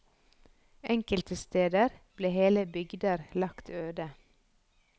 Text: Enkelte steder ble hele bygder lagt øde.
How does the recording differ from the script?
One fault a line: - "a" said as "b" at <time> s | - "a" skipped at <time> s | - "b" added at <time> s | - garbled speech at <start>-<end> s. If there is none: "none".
none